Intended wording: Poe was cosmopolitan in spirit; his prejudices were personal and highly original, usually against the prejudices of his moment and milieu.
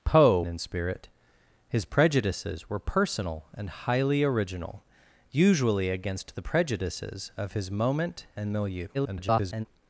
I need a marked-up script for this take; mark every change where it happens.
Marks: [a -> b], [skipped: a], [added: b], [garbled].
Poe [skipped: was cosmopolitan] in spirit; his prejudices were personal and highly original, usually against the prejudices of his moment and milieu. [garbled]